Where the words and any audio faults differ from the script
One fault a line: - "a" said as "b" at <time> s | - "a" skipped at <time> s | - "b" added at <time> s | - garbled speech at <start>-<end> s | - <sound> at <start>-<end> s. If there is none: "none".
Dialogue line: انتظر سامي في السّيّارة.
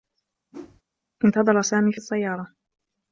- whoosh at 0.5-0.8 s